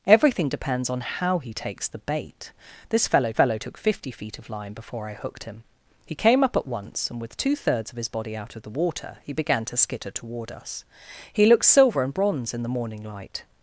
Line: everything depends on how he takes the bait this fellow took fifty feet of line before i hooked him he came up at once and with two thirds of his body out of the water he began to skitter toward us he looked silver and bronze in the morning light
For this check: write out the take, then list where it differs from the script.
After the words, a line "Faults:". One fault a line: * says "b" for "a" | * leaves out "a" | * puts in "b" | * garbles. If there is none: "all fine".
everything depends on how he takes the bait this fellow fellow took fifty feet of line before i hooked him he came up at once and with two thirds of his body out of the water he began to skitter toward us he looked silver and bronze in the morning light
Faults:
* puts in "fellow"